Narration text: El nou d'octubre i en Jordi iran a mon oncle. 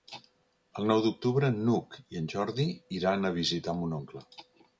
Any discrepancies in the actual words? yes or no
yes